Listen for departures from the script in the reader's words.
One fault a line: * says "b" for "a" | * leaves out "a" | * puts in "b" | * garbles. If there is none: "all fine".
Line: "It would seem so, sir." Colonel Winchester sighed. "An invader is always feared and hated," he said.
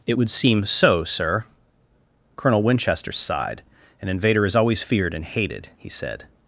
all fine